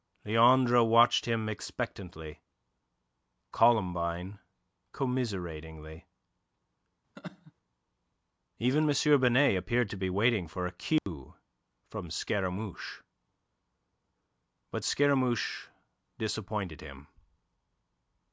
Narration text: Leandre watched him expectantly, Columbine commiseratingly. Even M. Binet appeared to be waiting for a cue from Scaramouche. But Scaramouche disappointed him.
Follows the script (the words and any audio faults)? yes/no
no